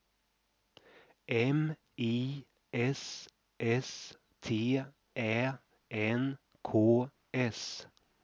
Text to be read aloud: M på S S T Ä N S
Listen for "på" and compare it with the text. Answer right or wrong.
wrong